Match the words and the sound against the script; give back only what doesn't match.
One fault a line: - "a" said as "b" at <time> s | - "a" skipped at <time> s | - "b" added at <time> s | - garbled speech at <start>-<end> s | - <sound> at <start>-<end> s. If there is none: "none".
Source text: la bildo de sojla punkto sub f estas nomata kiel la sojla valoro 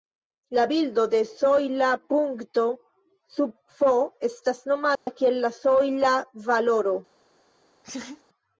- dropout at 5.0-5.1 s
- laugh at 7.8-8.2 s